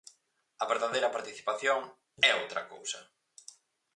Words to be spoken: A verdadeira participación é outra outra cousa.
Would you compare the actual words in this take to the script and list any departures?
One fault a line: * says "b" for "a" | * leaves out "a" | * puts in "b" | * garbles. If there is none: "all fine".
* leaves out "outra"